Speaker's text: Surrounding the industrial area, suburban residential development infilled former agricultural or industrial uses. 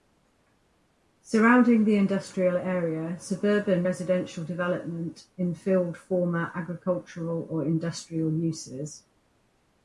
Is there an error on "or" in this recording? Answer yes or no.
no